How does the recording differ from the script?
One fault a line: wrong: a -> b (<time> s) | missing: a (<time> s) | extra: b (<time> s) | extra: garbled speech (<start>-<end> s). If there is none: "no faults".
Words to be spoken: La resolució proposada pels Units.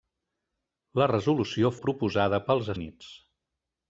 no faults